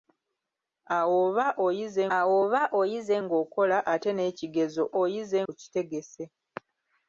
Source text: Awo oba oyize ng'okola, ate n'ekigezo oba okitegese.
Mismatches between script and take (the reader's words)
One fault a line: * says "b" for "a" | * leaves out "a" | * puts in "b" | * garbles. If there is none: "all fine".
* puts in "awo oba oyize"
* says "oyize" for "oba"